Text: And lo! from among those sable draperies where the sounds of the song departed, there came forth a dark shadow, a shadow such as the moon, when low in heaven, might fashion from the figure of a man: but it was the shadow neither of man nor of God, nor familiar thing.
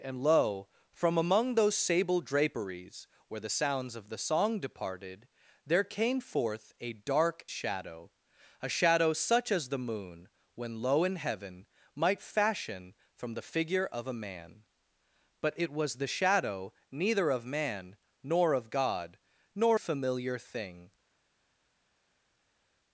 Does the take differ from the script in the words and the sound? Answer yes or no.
no